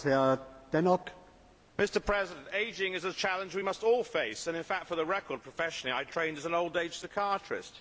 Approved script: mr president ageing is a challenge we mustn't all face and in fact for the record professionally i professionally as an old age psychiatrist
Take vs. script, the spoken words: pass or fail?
fail